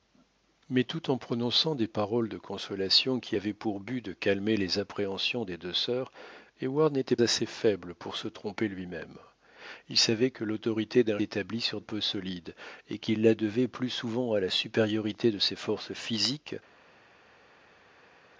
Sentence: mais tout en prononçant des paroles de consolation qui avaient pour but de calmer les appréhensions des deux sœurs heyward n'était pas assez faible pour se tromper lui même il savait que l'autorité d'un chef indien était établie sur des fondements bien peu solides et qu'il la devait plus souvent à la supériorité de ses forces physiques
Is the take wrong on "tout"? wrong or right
right